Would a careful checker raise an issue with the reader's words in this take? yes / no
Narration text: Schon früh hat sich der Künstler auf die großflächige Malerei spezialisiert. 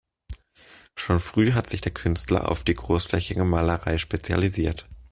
no